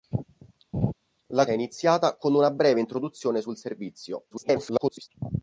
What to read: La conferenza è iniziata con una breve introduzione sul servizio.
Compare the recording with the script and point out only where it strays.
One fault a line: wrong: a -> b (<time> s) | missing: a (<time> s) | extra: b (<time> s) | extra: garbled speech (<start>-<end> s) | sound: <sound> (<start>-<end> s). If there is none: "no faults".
sound: laugh (0.7-0.9 s)
missing: conferenza (1.5 s)
extra: garbled speech (4.3-5.1 s)